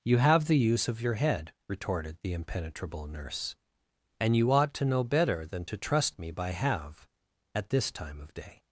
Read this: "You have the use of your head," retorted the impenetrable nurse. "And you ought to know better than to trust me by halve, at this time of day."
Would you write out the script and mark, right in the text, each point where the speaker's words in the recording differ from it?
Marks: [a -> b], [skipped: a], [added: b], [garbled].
"You have the use of your head," retorted the impenetrable nurse. "And you ought to know better than to trust me by halve, at this time of day."